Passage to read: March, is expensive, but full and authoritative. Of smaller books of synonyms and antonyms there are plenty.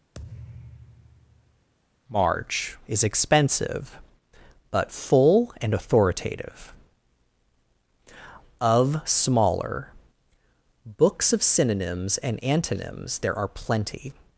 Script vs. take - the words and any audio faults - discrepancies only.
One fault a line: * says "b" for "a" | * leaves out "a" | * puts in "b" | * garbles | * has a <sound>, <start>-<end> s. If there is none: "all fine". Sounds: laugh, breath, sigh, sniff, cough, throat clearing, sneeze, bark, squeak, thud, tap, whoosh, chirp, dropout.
* has a thud, 0.1-1.7 s